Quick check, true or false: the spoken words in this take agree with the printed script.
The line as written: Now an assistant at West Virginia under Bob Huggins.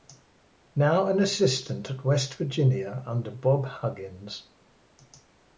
true